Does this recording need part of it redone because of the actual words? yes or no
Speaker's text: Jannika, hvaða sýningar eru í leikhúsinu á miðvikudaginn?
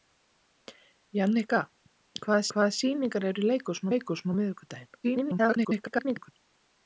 yes